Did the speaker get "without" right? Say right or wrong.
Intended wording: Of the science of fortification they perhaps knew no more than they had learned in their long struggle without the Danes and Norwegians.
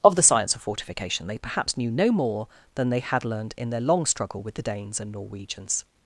wrong